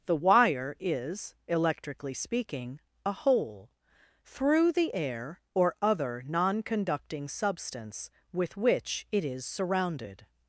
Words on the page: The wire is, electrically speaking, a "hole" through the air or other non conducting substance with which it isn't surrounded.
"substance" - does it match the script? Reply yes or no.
yes